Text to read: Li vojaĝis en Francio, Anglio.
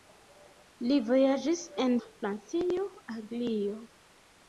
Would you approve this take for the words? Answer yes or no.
yes